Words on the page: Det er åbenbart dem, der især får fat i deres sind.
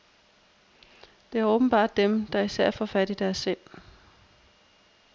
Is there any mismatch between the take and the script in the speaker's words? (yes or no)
no